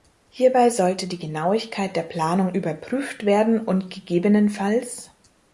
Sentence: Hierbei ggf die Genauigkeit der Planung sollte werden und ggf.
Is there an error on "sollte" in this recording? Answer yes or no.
yes